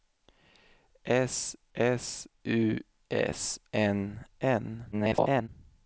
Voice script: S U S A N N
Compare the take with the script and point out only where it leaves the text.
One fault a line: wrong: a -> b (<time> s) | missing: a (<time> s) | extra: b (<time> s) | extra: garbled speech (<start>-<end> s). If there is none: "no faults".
extra: s (1.7 s)
missing: A (3.6 s)
extra: garbled speech (4.9-5.5 s)